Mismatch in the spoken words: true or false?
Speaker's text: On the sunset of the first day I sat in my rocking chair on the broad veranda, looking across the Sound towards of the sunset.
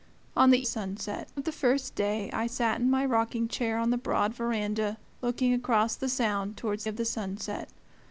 false